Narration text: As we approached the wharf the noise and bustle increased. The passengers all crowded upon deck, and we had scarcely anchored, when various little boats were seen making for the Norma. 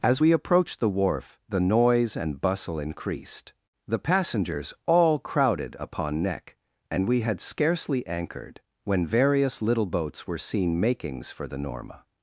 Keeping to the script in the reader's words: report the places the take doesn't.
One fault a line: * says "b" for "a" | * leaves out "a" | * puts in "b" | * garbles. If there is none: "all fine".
* says "neck" for "deck"
* says "makings" for "making"